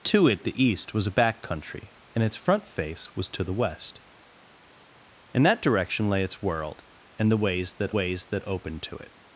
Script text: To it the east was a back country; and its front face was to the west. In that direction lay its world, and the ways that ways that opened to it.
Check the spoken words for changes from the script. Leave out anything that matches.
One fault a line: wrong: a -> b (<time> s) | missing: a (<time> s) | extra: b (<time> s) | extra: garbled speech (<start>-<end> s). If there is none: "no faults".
no faults